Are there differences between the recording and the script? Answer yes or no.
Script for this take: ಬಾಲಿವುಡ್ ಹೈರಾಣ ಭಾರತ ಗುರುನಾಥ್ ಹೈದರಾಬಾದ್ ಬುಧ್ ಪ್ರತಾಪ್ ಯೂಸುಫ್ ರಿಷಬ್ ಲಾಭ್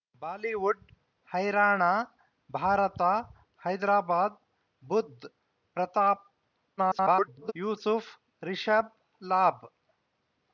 yes